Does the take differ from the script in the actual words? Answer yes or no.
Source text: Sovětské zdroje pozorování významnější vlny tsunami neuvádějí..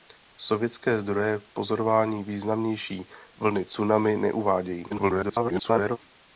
yes